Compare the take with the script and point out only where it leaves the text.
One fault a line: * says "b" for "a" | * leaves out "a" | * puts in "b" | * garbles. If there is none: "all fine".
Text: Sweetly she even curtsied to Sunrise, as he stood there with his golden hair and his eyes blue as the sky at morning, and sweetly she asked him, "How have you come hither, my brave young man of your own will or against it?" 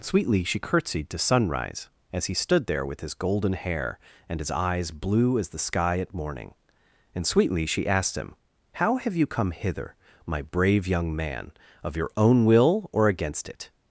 * leaves out "even"